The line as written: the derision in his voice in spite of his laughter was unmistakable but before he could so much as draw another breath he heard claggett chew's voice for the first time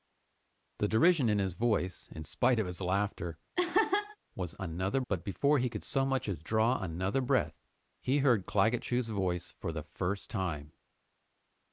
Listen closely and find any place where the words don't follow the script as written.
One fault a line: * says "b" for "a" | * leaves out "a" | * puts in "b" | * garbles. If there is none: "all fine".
* says "another" for "unmistakable"